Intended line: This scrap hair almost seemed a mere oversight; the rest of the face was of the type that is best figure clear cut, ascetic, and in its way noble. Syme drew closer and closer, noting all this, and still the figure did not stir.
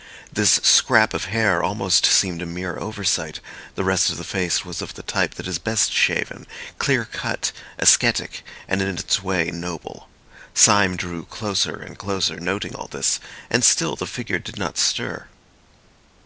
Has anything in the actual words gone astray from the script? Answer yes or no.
yes